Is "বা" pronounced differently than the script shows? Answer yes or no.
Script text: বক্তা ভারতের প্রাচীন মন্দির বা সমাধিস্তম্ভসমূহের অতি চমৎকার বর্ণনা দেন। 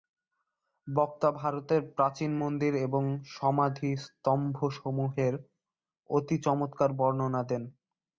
yes